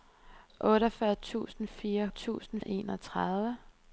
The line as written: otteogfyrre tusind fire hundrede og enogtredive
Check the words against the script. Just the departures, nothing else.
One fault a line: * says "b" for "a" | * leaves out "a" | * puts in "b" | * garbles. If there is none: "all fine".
* says "tusind" for "hundrede"